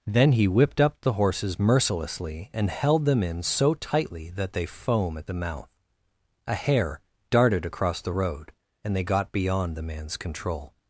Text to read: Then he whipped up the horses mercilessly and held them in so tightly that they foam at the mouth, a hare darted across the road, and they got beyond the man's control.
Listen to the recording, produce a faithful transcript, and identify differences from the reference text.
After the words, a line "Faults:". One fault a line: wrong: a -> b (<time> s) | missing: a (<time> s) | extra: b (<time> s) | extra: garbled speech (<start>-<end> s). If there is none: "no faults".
Then he whipped up the horses mercilessly and held them in so tightly that they foam at the mouth, a hare darted across the road, and they got beyond the man's control.
Faults:
no faults